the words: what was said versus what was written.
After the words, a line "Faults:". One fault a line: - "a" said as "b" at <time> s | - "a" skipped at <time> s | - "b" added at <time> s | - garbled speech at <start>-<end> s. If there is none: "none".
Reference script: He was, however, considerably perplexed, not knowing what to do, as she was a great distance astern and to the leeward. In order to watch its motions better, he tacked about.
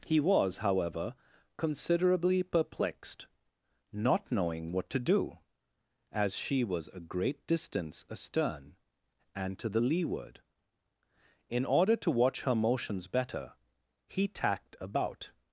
He was, however, considerably perplexed, not knowing what to do, as she was a great distance astern and to the leeward. In order to watch her motions better, he tacked about.
Faults:
- "its" said as "her" at 12.4 s